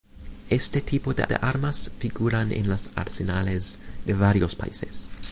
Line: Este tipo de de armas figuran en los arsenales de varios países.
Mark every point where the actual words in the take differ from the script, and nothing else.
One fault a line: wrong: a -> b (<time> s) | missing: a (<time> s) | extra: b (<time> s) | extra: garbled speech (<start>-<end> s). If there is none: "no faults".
no faults